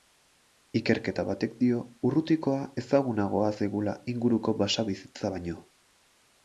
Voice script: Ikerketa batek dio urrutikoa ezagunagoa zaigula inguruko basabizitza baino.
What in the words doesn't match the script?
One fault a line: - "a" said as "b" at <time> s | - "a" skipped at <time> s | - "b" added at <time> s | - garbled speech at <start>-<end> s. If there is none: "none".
none